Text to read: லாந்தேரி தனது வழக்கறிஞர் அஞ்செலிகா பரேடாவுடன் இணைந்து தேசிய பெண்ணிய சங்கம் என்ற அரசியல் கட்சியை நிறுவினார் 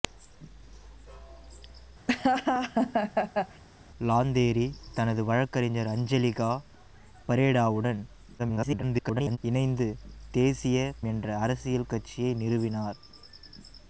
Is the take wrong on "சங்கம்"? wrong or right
wrong